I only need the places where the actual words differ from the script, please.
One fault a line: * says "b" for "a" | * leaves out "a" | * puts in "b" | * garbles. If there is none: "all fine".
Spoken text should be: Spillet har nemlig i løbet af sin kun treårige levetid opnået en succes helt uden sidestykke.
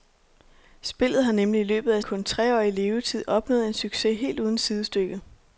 * leaves out "sin"